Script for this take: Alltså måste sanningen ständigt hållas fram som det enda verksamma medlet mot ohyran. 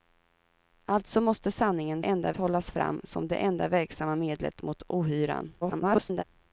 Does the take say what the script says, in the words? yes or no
no